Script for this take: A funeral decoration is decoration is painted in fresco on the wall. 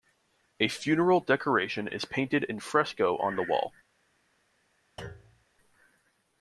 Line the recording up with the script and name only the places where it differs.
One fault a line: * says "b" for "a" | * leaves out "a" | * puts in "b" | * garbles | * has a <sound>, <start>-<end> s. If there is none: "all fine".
* leaves out "decoration is"
* has a thud, 5.0-5.5 s